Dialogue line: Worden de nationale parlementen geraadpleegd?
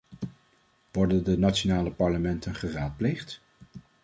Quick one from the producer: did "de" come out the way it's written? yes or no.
yes